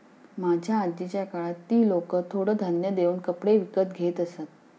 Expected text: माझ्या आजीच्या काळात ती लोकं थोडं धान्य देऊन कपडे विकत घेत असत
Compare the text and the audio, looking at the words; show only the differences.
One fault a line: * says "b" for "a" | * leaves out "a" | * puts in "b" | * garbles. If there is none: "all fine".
all fine